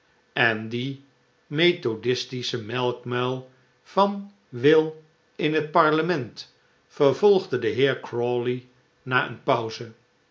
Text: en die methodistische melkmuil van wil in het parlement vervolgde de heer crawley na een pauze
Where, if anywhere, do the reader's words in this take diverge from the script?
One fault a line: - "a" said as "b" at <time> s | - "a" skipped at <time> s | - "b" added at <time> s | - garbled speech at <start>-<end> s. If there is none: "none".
none